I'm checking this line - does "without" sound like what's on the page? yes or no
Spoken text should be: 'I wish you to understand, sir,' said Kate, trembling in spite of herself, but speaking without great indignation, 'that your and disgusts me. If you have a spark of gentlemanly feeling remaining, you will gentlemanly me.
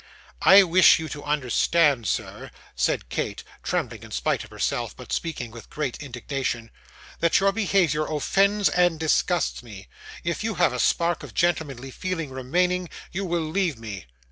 no